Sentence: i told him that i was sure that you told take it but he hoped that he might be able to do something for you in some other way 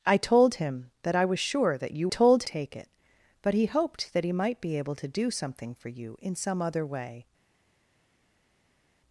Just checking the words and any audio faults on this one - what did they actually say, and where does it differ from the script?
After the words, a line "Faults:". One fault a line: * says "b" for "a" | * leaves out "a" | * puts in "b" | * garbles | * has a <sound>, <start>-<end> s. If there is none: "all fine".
i told him that i was sure that you told take it but he hoped that he might be able to do something for you in some other way
Faults:
all fine